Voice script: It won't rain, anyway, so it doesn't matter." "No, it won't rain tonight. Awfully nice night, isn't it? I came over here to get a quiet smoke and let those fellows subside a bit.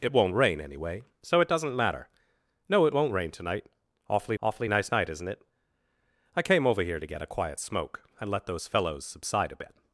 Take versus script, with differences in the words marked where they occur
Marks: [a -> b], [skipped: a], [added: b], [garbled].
It won't rain, anyway, so it doesn't matter." "No, it won't rain tonight. Awfully [added: awfully] nice night, isn't it? I came over here to get a quiet smoke and let those fellows subside a bit.